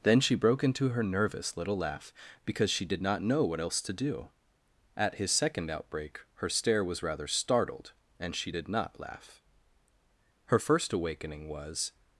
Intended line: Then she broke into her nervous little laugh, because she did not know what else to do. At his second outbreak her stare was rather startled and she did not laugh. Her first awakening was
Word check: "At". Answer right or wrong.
right